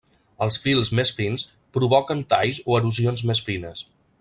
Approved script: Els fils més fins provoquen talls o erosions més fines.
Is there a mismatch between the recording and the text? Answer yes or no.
no